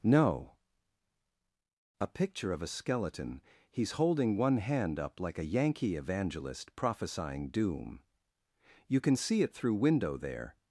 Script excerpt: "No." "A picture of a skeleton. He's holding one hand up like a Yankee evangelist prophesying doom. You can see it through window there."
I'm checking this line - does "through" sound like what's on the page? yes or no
yes